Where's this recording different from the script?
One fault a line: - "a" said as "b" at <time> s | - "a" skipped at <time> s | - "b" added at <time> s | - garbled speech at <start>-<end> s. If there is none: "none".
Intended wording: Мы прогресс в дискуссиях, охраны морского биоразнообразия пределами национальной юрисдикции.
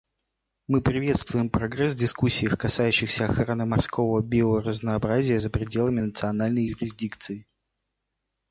- "приветствуем" added at 0.8 s
- "касающихся" added at 2.6 s
- "за" added at 5.3 s